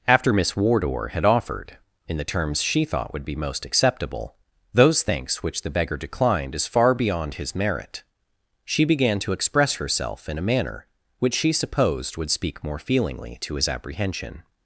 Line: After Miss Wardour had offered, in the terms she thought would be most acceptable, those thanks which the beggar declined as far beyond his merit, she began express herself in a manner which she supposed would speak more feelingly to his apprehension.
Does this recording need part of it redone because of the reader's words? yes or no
yes